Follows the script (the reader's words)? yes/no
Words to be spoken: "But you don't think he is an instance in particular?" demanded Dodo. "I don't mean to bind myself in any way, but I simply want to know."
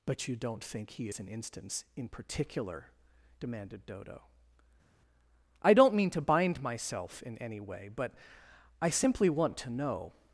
yes